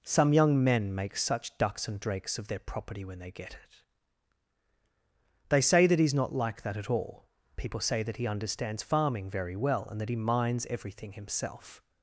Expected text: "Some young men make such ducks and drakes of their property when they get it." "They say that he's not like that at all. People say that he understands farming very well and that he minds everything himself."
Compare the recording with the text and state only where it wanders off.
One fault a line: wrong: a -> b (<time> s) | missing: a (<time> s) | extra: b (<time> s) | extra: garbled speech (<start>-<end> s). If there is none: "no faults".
no faults